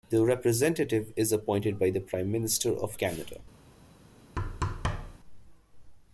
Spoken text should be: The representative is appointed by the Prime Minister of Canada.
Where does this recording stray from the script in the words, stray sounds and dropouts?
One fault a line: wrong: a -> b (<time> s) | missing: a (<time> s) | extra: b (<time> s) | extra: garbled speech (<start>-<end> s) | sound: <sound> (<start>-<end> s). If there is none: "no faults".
sound: thud (4.4-5.2 s)